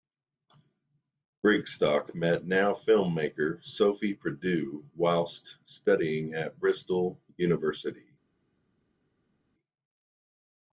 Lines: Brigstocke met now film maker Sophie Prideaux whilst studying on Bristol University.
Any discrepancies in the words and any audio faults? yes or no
yes